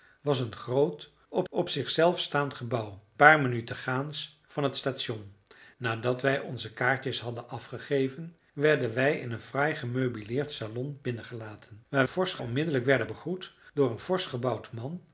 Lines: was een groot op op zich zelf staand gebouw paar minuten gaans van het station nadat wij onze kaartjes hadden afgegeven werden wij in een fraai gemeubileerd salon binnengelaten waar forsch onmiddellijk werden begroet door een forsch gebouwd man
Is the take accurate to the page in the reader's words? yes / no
yes